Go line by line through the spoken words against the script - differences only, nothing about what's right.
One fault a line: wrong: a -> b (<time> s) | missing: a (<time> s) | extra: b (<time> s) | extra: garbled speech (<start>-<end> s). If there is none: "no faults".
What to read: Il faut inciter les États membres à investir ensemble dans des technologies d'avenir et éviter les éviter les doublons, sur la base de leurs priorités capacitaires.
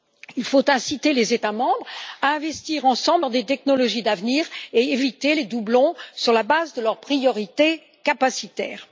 missing: éviter les (5.4 s)